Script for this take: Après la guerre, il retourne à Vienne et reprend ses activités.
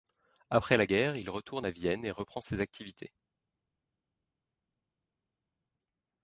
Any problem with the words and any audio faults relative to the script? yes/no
no